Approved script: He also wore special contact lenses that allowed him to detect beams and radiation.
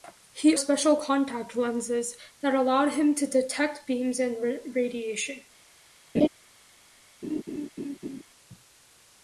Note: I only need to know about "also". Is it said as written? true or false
false